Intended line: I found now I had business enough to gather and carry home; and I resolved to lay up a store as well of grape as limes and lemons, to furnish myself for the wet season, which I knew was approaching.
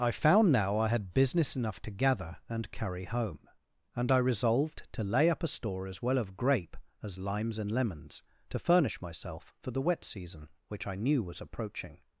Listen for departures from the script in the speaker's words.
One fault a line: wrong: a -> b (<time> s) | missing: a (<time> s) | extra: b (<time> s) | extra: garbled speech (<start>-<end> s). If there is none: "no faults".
no faults